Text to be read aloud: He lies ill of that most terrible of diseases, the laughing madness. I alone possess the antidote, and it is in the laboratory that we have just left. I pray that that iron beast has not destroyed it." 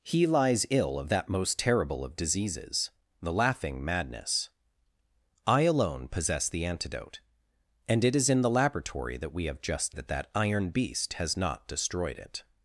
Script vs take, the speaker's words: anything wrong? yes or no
yes